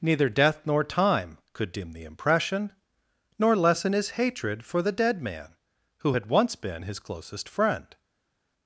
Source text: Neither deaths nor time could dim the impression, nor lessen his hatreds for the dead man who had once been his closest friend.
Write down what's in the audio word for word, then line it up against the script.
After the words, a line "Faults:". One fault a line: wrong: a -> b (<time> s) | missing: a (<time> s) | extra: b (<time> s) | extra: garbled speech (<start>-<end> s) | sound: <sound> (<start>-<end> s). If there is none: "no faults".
Neither death nor time could dim the impression, nor lessen his hatred for the dead man who had once been his closest friend.
Faults:
wrong: deaths -> death (0.3 s)
wrong: hatreds -> hatred (4.1 s)